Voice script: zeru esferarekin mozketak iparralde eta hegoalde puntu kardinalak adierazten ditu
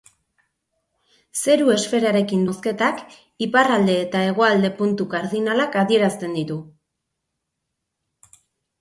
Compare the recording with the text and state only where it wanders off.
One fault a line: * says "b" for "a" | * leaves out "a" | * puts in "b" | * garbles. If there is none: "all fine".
all fine